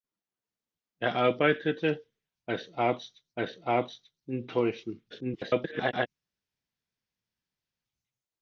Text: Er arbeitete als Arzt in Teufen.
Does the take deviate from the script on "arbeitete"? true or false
false